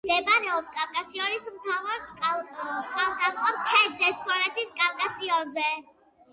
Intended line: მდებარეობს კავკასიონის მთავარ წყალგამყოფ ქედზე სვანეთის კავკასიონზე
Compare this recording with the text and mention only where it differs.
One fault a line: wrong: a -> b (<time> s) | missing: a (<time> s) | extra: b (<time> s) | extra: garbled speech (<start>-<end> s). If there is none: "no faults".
no faults